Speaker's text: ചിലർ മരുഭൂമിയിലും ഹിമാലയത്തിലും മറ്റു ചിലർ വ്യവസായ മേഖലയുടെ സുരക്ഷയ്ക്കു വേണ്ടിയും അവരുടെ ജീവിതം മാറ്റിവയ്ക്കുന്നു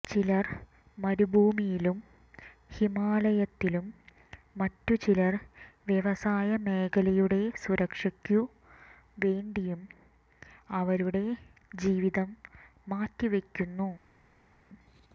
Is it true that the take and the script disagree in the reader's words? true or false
false